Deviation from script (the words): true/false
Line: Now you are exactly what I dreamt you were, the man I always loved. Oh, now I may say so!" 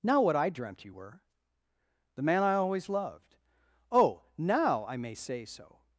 true